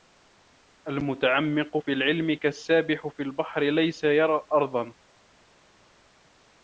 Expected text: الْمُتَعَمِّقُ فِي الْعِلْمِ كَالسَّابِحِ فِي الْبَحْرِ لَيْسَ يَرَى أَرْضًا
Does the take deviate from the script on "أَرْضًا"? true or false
false